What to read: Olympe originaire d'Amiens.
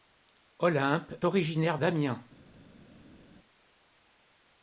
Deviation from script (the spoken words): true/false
false